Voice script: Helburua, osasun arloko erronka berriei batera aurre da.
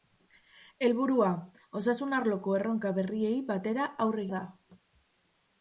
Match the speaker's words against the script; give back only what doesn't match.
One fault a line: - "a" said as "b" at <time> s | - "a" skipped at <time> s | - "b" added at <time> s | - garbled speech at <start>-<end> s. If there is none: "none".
none